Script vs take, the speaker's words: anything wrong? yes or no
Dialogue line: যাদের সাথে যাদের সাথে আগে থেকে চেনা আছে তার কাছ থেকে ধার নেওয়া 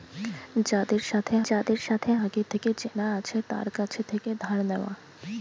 no